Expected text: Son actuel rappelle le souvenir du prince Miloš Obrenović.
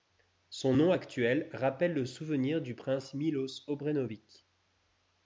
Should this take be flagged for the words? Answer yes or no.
yes